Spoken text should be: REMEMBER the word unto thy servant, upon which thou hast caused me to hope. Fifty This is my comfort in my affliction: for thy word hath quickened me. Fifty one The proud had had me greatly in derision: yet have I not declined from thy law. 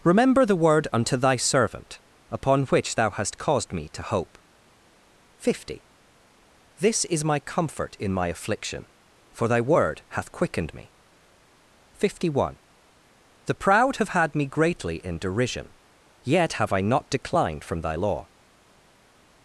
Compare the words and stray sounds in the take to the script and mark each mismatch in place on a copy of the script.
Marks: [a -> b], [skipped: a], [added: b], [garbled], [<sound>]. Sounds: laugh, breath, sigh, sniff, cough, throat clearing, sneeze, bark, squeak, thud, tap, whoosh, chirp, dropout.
REMEMBER the word unto thy servant, upon which thou hast caused me to hope. Fifty This is my comfort in my affliction: for thy word hath quickened me. Fifty one The proud [had -> have] had me greatly in derision: yet have I not declined from thy law.